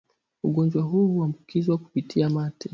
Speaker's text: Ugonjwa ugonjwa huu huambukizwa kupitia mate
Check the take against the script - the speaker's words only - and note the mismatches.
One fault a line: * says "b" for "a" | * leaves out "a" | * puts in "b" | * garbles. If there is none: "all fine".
* leaves out "ugonjwa"